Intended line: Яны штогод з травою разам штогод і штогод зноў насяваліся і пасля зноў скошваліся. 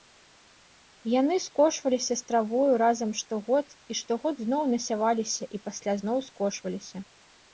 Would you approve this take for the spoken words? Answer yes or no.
no